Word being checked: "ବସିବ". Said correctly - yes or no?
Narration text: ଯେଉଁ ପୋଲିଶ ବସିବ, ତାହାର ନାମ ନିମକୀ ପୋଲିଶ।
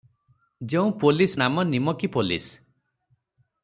no